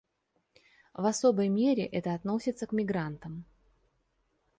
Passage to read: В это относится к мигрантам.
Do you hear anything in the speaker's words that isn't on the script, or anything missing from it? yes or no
yes